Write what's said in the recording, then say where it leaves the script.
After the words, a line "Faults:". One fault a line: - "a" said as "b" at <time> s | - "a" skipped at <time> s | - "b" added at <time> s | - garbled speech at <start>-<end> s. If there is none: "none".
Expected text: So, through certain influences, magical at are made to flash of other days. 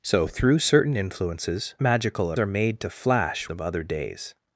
So, through certain influences, magical at are made to flash of other days.
Faults:
none